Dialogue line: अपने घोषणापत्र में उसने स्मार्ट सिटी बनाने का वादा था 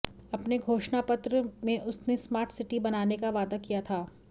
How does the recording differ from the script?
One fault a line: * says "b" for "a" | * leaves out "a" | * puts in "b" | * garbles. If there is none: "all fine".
* puts in "किया"